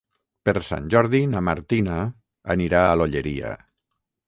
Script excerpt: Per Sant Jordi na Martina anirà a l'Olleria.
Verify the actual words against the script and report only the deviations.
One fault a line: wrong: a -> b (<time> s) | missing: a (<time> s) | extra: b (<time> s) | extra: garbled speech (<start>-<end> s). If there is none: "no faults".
no faults